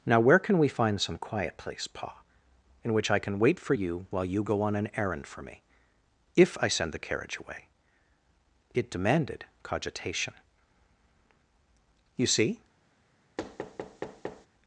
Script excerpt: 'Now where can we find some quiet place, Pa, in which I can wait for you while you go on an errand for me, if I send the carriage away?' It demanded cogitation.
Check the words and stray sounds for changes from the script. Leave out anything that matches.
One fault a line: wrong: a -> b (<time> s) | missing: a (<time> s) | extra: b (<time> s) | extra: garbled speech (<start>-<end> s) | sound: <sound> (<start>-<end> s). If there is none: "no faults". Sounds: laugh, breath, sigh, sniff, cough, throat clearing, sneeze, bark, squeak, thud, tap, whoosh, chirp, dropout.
extra: You see (12.1 s)
sound: thud (13.4-14.5 s)